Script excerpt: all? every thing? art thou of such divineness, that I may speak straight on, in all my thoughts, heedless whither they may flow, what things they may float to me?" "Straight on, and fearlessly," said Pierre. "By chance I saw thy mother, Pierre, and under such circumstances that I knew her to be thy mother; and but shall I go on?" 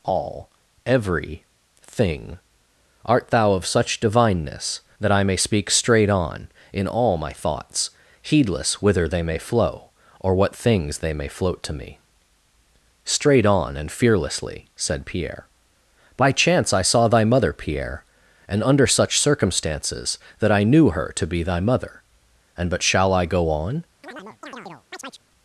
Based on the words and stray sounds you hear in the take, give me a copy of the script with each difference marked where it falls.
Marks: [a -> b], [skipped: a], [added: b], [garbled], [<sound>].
all? every thing? art thou of such divineness, that I may speak straight on, in all my thoughts, heedless whither they may flow, [added: or] what things they may float to me?" "Straight on, and fearlessly," said Pierre. "By chance I saw thy mother, Pierre, and under such circumstances that I knew her to be thy mother; and but shall I go on?" [chirp]